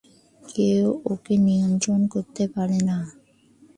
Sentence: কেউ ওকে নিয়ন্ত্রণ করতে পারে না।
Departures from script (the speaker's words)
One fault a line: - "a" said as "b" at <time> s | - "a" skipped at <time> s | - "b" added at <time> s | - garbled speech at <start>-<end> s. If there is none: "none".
none